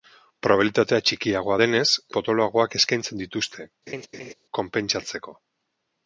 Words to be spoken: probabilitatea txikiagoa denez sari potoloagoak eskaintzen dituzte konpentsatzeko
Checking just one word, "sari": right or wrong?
wrong